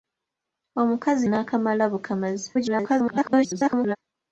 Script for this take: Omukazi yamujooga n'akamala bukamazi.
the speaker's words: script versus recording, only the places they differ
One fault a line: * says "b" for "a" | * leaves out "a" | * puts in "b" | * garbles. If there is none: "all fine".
* leaves out "yamujooga"
* garbles